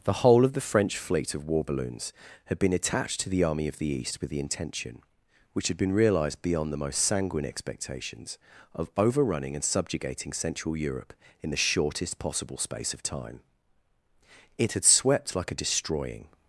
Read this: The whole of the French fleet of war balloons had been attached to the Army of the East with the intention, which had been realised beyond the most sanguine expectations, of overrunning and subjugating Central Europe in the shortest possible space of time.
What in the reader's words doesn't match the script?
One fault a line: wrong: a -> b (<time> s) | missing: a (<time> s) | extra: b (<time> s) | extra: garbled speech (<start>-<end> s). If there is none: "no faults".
extra: It had swept like a destroying (14.6 s)